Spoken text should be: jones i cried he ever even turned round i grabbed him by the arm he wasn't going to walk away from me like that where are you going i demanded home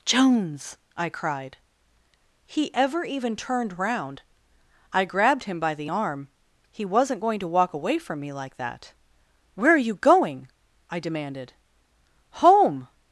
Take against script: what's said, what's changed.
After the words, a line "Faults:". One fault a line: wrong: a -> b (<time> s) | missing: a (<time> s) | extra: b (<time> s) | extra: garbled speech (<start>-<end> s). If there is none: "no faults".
jones i cried he ever even turned round i grabbed him by the arm he wasn't going to walk away from me like that where are you going i demanded home
Faults:
no faults